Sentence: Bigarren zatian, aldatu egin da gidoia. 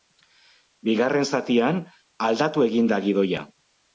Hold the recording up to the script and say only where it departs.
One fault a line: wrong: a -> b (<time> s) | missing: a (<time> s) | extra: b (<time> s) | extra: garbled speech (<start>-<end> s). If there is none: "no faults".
no faults